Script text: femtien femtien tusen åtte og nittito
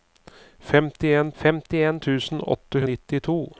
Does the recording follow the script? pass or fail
pass